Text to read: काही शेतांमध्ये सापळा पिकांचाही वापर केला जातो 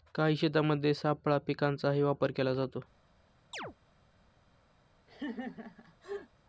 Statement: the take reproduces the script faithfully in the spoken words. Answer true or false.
true